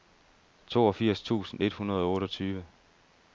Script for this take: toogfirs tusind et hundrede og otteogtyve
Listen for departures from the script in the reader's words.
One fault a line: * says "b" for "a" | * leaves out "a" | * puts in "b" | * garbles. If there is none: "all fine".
all fine